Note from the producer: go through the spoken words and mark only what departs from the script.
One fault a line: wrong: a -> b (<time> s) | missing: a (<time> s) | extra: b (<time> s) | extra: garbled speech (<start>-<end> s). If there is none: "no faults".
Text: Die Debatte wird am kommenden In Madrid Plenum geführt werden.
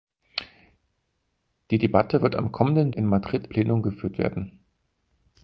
no faults